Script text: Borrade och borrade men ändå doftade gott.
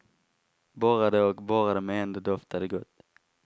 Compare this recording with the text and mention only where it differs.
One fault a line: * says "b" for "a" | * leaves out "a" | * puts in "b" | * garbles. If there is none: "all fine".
all fine